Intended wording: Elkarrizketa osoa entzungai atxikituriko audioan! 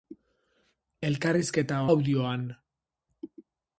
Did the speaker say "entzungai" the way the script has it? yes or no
no